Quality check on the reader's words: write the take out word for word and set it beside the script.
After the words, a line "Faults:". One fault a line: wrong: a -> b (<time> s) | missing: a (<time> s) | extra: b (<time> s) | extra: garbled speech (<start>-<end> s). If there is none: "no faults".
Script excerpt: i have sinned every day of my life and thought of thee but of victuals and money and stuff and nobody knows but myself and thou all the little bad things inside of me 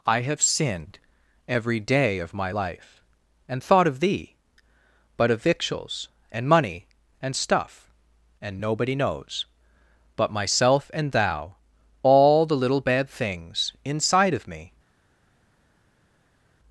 i have sinned every day of my life and thought of thee but of victuals and money and stuff and nobody knows but myself and thou all the little bad things inside of me
Faults:
no faults